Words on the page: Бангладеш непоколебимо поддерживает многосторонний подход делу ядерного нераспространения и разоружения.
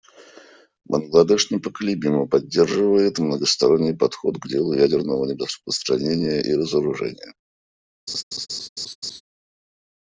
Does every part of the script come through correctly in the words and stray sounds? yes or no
no